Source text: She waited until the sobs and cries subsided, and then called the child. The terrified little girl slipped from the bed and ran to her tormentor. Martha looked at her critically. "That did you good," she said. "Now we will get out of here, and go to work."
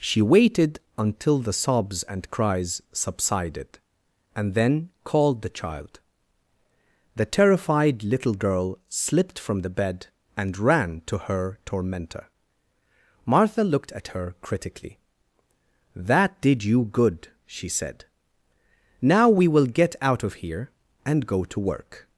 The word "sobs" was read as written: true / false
true